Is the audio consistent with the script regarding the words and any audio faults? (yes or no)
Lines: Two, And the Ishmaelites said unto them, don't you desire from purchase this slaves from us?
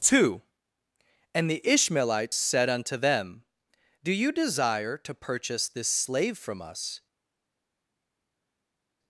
no